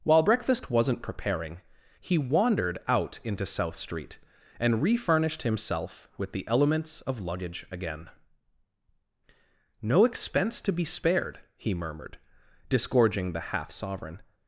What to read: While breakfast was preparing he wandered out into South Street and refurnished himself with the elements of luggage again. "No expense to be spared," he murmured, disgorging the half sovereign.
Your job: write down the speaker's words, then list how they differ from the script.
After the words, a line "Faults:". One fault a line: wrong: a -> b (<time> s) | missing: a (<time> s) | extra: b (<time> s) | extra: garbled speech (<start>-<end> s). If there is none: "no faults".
While breakfast wasn't preparing he wandered out into South Street and refurnished himself with the elements of luggage again. "No expense to be spared," he murmured, disgorging the half sovereign.
Faults:
wrong: was -> wasn't (0.7 s)